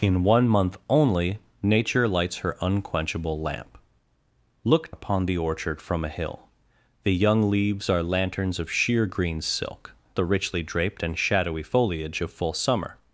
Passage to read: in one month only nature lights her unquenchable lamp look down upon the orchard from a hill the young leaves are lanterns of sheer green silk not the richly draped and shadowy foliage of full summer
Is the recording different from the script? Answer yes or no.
yes